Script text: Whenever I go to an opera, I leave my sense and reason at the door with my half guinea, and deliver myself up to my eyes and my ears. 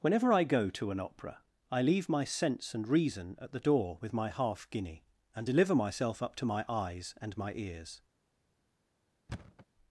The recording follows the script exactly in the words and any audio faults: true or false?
false